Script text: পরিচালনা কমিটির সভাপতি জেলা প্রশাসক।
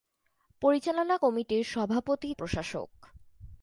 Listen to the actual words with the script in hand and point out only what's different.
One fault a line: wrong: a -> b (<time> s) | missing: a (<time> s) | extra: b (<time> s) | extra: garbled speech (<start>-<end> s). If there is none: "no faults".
missing: জেলা (2.3 s)